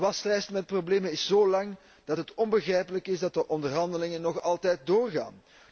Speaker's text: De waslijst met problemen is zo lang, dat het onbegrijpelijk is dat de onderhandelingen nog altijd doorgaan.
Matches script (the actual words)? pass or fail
pass